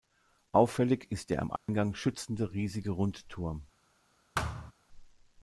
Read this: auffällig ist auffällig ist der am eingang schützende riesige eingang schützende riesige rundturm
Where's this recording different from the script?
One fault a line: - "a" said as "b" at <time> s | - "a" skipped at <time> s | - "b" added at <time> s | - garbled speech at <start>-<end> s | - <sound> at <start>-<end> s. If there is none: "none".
- "auffällig ist" skipped at 1.3 s
- dropout at 1.6-1.7 s
- "eingang schützende riesige" skipped at 2.9 s
- thud at 4.3-4.7 s